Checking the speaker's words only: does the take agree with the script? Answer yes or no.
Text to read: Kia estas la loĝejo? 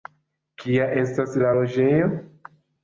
yes